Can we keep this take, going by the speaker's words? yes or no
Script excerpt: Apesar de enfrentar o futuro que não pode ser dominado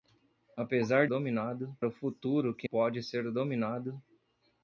no